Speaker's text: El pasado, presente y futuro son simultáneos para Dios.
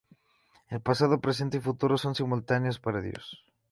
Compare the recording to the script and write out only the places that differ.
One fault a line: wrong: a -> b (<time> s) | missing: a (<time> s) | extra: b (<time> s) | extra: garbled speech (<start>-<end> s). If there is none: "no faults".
no faults